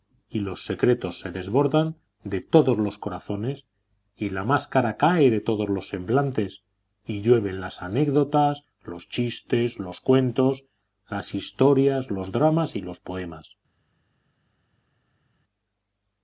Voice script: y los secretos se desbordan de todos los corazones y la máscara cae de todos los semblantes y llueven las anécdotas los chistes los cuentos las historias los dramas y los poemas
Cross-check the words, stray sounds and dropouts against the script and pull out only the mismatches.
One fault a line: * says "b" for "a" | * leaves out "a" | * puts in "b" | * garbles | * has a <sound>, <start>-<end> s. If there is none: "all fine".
all fine